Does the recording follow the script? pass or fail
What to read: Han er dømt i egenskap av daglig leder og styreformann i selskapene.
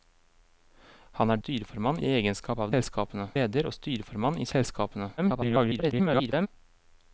fail